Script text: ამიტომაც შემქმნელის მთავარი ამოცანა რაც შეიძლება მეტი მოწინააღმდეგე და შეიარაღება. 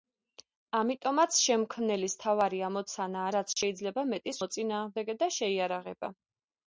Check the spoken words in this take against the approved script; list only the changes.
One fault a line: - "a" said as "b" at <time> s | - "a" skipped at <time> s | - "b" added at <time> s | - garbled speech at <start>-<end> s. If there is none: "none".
none